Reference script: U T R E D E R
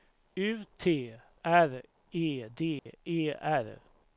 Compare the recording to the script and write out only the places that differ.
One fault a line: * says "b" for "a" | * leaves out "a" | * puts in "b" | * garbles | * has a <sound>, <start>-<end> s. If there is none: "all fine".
* has a dropout, 2.8-2.9 s